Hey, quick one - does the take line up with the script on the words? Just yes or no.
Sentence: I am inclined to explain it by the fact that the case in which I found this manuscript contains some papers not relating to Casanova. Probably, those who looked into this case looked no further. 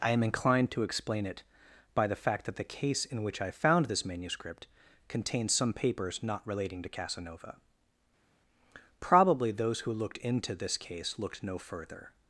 yes